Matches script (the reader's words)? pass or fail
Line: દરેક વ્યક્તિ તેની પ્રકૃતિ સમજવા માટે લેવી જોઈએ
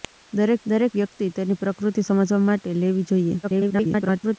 fail